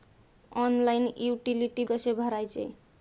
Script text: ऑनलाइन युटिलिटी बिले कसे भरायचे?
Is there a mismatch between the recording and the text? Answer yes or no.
yes